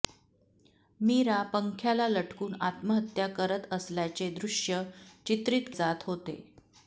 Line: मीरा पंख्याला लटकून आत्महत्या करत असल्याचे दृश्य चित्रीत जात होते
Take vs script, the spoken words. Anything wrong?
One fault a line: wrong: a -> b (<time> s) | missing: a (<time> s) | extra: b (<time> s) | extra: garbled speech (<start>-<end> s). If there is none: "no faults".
no faults